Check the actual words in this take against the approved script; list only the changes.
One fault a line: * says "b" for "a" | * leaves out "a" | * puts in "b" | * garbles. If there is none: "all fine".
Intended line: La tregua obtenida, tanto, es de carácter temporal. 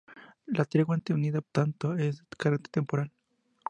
all fine